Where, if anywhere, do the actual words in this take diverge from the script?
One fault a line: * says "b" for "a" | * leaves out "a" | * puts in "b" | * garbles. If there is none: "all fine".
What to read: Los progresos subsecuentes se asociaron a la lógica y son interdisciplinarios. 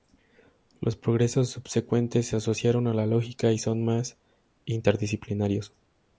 * puts in "más"